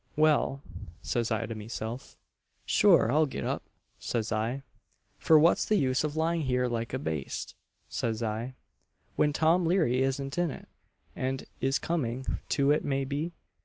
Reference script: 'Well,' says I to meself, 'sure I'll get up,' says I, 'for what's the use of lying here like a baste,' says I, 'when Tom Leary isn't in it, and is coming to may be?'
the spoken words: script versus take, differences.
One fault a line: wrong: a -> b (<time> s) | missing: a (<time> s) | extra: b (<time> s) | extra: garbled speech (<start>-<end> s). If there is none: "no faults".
extra: it (12.7 s)